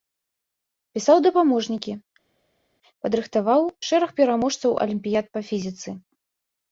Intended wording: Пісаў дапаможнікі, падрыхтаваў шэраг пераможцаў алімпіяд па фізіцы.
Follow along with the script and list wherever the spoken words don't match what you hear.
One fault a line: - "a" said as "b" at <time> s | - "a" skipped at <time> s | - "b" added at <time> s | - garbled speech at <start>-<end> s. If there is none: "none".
none